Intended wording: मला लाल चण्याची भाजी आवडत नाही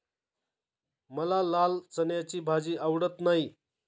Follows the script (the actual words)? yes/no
yes